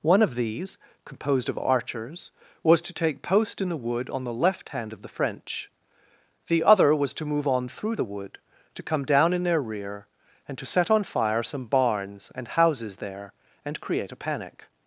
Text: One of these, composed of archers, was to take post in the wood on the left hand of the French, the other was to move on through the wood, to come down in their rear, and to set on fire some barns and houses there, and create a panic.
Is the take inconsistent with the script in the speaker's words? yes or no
no